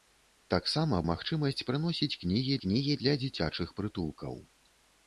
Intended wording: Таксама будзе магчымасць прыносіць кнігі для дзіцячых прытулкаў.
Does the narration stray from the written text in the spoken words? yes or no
yes